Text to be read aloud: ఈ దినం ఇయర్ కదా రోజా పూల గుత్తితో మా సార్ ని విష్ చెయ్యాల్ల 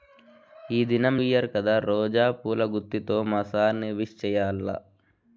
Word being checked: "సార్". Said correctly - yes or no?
yes